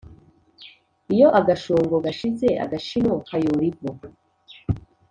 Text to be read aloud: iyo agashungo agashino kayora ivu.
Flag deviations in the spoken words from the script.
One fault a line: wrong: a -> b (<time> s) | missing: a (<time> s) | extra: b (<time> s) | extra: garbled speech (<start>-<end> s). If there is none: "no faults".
extra: gashize (2.1 s)